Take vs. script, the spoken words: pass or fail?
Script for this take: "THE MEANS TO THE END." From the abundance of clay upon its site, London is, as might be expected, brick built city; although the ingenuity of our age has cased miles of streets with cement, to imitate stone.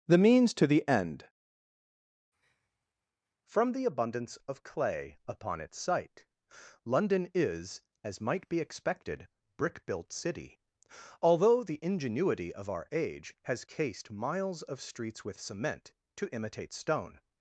pass